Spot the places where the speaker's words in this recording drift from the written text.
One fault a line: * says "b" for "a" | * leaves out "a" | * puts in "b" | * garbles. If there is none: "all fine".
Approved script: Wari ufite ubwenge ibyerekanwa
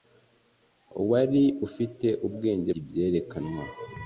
all fine